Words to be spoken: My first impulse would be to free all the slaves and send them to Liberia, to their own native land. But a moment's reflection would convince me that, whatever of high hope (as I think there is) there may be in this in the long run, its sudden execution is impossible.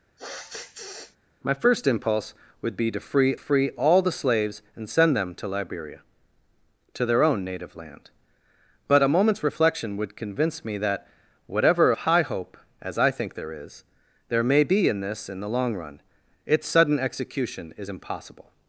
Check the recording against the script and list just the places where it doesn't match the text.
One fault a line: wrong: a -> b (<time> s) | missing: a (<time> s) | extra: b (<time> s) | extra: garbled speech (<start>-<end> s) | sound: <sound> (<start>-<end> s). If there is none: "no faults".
sound: sniff (0.2-1.2 s)
extra: free (3.4 s)
missing: of (11.9 s)